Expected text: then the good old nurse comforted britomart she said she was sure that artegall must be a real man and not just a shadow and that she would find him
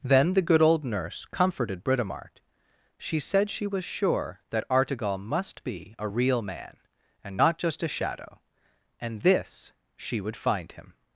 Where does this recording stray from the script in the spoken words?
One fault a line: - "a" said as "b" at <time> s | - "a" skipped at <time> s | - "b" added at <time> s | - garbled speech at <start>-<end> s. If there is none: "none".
- "that" said as "this" at 9.2 s